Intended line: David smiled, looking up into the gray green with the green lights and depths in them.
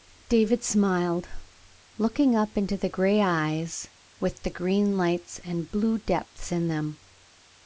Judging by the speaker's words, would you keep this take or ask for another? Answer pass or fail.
fail